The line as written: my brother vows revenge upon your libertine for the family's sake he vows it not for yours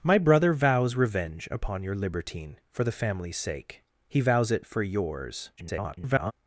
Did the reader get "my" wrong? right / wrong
right